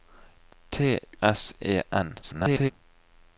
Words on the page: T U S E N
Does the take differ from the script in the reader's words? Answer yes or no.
yes